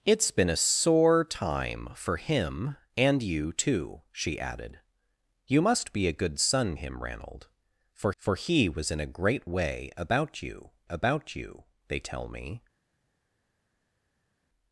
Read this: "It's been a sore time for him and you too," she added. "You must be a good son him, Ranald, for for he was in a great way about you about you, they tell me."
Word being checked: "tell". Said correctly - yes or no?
yes